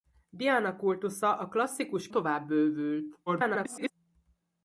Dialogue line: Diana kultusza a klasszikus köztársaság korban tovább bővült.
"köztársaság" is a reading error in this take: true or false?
true